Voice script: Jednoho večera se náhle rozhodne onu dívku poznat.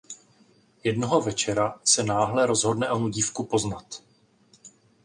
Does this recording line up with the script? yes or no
yes